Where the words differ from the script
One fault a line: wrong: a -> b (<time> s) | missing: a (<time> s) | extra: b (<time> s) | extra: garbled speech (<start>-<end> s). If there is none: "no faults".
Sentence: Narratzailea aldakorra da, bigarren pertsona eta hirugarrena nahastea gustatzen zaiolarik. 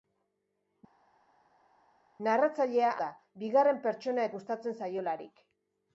missing: aldakorra (2.9 s)
missing: eta hirugarrena nahastea (4.3 s)